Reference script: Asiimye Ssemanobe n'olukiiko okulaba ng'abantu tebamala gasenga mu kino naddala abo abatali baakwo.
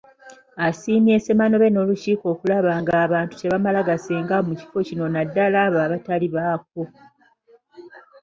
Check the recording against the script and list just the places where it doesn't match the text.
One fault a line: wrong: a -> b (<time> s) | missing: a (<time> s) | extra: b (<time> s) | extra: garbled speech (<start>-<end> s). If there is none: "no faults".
extra: kifo (4.6 s)